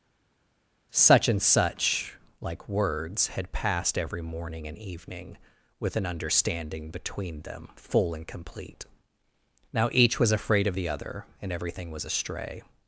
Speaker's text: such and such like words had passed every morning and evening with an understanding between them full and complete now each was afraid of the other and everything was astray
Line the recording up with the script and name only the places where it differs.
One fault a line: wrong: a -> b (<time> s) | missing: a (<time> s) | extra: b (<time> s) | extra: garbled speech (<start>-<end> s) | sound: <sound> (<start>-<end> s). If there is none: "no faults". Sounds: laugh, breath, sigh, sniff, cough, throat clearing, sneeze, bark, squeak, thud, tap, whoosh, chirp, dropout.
no faults